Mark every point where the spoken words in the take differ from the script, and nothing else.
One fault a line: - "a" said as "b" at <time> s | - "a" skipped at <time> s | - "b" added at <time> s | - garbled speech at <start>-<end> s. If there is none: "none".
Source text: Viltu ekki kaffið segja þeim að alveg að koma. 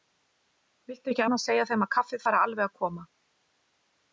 - "kaffið" said as "annars" at 1.2 s
- "kaffið fari" added at 2.0 s